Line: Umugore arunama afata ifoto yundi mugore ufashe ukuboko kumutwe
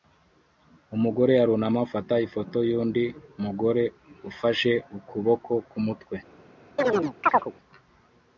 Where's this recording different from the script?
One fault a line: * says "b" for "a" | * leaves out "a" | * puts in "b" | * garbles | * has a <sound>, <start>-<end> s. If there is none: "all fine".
* has a chirp, 6.8-7.5 s